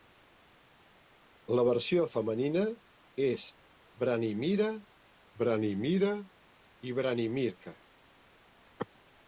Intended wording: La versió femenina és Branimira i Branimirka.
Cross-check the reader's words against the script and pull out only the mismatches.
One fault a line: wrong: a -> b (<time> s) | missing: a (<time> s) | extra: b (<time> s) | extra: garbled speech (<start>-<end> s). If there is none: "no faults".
extra: Branimira (5.4 s)